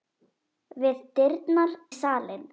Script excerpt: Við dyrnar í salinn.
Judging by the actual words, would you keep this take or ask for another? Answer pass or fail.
pass